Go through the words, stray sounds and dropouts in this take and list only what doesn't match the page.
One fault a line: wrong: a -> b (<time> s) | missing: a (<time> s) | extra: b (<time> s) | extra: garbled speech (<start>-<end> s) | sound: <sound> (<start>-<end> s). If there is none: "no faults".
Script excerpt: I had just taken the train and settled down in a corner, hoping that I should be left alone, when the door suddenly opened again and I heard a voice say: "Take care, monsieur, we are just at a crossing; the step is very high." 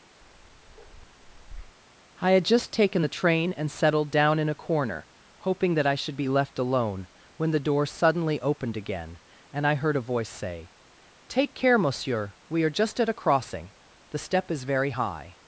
sound: bark (0.2-1.8 s)